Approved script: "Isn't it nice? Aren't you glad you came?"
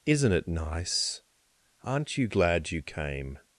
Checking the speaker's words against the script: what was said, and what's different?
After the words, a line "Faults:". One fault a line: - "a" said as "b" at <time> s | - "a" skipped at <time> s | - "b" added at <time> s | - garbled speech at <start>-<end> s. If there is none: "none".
"Isn't it nice? Aren't you glad you came?"
Faults:
none